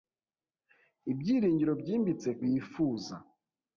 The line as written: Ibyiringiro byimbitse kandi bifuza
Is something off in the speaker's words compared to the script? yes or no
yes